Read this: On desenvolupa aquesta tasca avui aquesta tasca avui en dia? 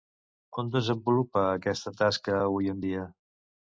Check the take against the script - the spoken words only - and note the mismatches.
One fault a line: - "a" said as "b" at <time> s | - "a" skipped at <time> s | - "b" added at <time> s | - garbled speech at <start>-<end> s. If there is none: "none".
- "aquesta tasca avui" skipped at 2.7 s